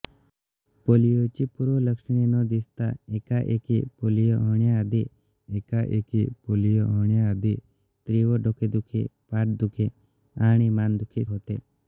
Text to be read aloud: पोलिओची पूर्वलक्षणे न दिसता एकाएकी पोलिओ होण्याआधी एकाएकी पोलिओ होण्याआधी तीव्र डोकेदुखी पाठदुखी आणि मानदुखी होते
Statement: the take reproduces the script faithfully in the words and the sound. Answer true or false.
true